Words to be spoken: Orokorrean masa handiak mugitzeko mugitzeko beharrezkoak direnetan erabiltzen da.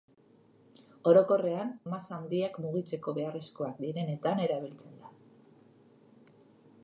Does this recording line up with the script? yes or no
no